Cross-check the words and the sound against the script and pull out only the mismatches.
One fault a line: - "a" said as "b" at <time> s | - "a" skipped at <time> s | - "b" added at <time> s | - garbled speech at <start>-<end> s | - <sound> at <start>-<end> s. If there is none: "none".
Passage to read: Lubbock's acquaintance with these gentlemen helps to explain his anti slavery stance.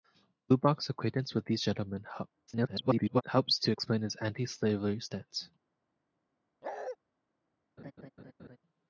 - garbled speech at 2.5-3.2 s
- bark at 6.6-7.0 s
- laugh at 7.8-8.6 s